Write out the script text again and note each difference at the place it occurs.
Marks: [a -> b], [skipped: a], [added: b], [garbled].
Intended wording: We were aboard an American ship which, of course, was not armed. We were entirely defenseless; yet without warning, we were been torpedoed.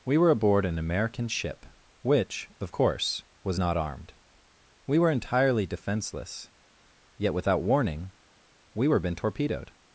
We were aboard an American ship which, of course, was not armed. We were entirely defenseless; yet without warning, we were been torpedoed.